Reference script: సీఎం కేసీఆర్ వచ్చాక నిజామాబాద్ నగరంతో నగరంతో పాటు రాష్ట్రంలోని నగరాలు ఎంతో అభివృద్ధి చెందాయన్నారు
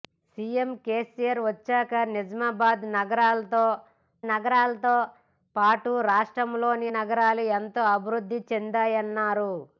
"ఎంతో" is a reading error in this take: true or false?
false